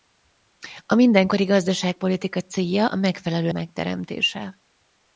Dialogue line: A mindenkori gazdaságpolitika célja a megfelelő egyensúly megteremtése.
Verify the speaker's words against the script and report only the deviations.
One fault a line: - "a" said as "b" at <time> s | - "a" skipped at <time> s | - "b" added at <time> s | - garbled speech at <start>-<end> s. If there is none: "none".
- "egyensúly" skipped at 3.5 s